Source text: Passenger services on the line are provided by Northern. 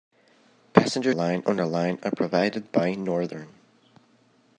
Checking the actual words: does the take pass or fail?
fail